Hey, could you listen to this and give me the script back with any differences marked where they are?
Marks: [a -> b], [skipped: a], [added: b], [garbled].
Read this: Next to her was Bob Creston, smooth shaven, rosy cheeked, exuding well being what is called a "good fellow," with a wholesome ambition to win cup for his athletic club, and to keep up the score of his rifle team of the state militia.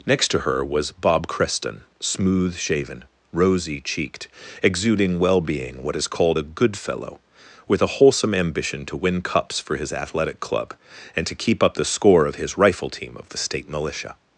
Next to her was Bob Creston, smooth shaven, rosy cheeked, exuding well being what is called a "good fellow," with a wholesome ambition to win [cup -> cups] for his athletic club, and to keep up the score of his rifle team of the state militia.